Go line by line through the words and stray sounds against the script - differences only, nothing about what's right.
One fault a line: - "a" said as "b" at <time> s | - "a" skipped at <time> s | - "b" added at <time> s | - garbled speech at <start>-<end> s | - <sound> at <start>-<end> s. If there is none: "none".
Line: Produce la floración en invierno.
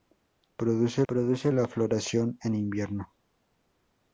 - "produce" added at 1.1 s